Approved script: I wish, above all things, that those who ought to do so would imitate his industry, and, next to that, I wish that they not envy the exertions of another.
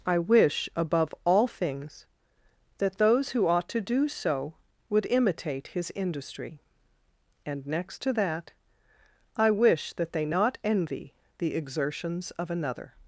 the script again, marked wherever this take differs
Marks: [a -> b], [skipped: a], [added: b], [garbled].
I wish, above all things, that those who ought to do so would imitate his industry, and, next to that, I wish that they not envy the exertions of another.